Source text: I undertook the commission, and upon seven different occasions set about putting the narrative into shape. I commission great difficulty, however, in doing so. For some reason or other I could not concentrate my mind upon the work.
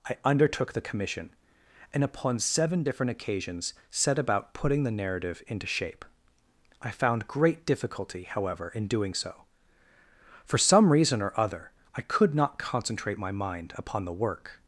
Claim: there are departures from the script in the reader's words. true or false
true